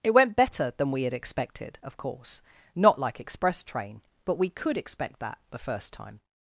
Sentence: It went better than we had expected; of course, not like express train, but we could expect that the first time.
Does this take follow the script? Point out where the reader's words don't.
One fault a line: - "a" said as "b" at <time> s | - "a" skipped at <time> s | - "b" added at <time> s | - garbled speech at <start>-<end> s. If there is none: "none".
none